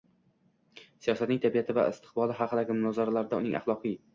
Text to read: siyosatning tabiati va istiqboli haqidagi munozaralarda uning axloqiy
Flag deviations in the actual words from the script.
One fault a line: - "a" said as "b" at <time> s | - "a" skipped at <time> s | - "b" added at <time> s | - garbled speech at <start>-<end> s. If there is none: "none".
none